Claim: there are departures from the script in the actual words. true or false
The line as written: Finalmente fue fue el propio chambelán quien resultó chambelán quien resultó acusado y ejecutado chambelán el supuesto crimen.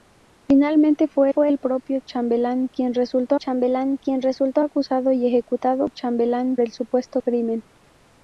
false